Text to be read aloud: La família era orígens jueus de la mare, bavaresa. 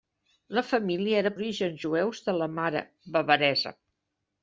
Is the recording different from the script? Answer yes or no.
no